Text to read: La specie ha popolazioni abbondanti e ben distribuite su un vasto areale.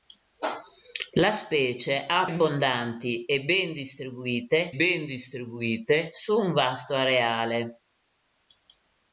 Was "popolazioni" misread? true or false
true